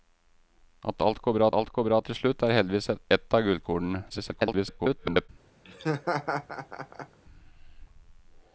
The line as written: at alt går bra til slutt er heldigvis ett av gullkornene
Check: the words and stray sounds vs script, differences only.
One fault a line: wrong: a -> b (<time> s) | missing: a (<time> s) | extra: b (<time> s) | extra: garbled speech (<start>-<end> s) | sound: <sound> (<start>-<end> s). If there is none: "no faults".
extra: alt går bra (1.6 s)
extra: garbled speech (4.1-5.3 s)
sound: laugh (5.6-7.2 s)